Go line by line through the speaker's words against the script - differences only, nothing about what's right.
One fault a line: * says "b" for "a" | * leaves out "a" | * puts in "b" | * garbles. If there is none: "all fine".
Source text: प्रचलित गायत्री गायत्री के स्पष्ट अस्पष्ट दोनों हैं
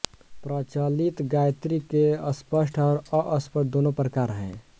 * leaves out "गायत्री"
* puts in "और"
* puts in "प्रकार"